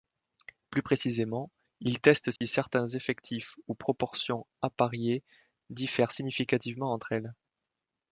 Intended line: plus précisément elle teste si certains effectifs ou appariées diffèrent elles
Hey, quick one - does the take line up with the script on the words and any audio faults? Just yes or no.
no